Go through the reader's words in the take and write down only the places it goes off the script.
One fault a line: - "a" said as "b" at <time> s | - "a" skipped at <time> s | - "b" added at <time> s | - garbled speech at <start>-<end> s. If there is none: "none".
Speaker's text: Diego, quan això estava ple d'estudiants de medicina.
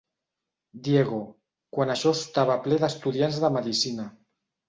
none